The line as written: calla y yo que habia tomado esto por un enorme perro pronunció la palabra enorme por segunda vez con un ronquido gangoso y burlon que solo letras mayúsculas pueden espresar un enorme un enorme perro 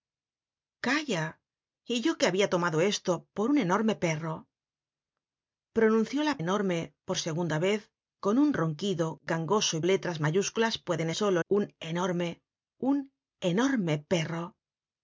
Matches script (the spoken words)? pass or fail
fail